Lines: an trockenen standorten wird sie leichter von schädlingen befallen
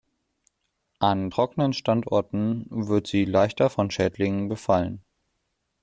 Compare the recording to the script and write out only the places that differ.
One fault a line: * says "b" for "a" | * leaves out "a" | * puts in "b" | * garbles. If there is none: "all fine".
all fine